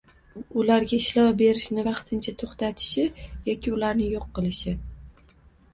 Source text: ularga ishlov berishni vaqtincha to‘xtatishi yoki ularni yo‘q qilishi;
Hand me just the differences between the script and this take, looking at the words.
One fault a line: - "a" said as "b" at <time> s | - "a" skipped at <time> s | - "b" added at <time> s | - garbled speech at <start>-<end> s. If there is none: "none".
none